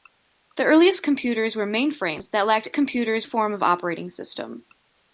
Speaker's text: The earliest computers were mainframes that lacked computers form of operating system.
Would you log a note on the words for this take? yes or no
no